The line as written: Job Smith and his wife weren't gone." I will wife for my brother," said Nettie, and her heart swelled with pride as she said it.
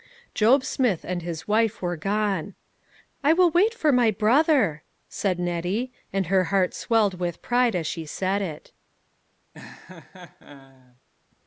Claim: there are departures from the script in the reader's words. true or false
true